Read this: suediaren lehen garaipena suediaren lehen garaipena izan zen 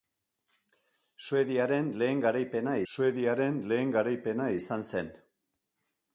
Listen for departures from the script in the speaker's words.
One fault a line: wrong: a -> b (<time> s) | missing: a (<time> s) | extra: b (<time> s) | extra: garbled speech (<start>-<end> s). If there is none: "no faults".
no faults